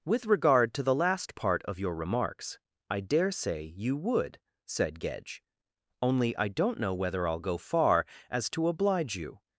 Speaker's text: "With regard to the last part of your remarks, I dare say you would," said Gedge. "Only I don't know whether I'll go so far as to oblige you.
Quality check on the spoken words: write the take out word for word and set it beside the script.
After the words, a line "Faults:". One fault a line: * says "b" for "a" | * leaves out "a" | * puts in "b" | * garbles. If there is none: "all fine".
"With regard to the last part of your remarks, I dare say you would," said Gedge. "Only I don't know whether I'll go far as to oblige you.
Faults:
* leaves out "so"